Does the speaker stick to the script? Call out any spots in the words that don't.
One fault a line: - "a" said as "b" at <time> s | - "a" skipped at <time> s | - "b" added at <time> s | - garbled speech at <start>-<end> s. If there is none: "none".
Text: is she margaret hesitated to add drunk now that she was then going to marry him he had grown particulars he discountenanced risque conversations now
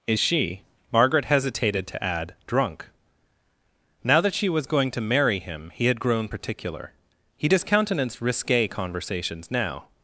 - "then" skipped at 4.7 s
- "particulars" said as "particular" at 6.3 s